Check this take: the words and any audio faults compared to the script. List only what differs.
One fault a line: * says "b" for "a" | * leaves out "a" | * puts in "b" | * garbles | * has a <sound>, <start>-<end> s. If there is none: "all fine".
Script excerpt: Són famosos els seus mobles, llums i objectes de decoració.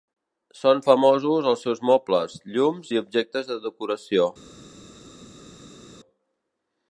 all fine